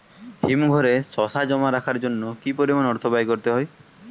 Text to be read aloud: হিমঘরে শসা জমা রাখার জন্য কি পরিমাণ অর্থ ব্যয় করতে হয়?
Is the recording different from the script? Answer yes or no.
no